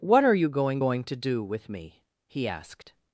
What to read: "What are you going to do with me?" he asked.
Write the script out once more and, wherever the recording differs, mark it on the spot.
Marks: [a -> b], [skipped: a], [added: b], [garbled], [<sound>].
"What are you going [added: going] to do with me?" he asked.